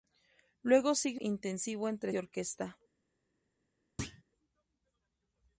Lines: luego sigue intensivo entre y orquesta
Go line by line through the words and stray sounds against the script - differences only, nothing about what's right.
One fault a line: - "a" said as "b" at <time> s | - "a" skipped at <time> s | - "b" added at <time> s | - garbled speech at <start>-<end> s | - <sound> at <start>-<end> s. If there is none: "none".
- thud at 4.0-4.2 s